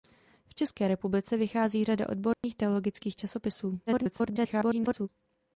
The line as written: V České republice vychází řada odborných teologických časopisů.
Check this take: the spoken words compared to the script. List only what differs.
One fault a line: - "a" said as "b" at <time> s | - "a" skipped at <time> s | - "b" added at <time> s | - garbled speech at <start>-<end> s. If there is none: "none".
- garbled speech at 3.9-5.1 s